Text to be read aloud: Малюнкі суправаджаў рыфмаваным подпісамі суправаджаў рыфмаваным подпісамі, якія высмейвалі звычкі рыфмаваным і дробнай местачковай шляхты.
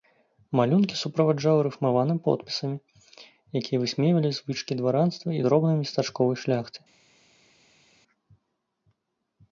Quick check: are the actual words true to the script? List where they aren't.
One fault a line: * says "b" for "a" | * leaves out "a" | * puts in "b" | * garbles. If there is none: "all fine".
* leaves out "суправаджаў рыфмаваным подпісамі"
* says "дваранства" for "рыфмаваным"